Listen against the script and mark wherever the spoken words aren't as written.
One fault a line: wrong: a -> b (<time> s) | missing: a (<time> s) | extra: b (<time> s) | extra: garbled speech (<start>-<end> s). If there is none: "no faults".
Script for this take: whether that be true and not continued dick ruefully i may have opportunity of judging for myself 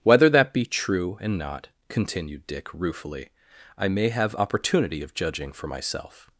no faults